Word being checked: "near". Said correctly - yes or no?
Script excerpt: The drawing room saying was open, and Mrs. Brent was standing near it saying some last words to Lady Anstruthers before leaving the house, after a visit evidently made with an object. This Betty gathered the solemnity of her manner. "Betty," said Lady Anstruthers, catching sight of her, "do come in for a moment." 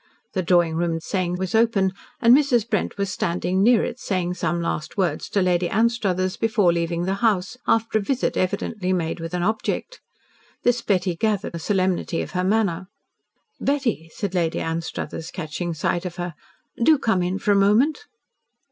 yes